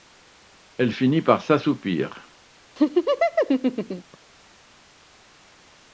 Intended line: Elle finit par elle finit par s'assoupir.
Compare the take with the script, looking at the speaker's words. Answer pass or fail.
fail